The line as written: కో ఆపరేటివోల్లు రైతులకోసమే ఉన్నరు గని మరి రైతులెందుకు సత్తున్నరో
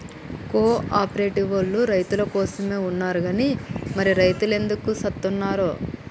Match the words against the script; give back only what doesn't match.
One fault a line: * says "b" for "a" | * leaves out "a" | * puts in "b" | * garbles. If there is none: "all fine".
all fine